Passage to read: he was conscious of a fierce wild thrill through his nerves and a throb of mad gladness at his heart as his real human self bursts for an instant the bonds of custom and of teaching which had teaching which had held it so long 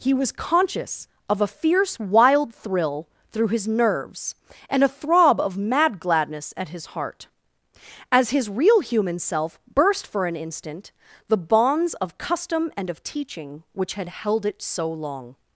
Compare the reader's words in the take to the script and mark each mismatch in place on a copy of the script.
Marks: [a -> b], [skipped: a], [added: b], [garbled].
he was conscious of a fierce wild thrill through his nerves and a throb of mad gladness at his heart as his real human self [bursts -> burst] for an instant the bonds of custom and of teaching which had [skipped: teaching which had] held it so long